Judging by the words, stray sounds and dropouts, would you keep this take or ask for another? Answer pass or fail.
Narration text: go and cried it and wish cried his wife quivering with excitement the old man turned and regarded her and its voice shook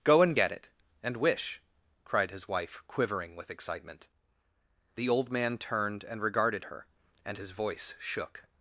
fail